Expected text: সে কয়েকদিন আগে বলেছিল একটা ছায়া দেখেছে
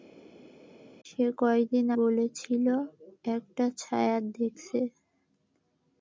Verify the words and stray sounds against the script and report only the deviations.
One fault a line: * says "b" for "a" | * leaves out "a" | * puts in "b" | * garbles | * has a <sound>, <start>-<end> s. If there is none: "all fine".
* leaves out "আগে"